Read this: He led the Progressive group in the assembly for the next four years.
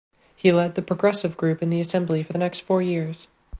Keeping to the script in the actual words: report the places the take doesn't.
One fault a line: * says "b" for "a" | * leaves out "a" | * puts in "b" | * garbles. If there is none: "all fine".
all fine